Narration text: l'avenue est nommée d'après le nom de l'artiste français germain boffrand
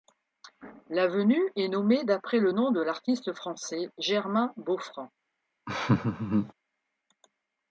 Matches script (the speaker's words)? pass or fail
pass